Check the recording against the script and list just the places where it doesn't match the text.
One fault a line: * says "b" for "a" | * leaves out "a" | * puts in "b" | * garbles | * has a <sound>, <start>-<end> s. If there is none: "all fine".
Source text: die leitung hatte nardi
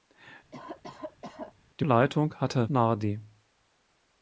* has a cough, 0.5-1.5 s